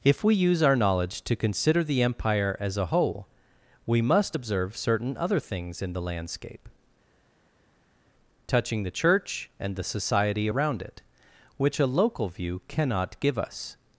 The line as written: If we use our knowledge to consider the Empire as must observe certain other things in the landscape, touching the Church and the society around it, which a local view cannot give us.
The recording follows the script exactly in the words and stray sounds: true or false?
false